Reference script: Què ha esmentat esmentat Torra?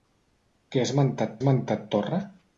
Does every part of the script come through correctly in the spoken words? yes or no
yes